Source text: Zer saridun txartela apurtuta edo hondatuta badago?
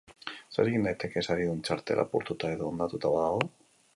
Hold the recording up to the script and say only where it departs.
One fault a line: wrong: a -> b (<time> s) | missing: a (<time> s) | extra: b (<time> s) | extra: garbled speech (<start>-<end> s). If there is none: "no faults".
extra: egin daiteke (0.7 s)